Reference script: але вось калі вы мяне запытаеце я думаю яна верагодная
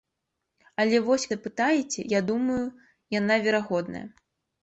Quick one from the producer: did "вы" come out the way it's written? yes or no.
no